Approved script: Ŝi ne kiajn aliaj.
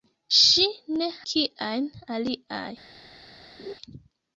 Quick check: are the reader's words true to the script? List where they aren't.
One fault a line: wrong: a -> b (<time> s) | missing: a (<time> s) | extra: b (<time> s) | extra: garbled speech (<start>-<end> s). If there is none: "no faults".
no faults